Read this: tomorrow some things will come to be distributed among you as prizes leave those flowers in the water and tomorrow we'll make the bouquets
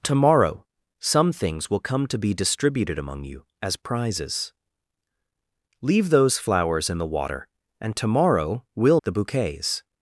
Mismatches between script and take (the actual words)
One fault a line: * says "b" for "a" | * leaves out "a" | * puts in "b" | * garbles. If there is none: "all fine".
* leaves out "make"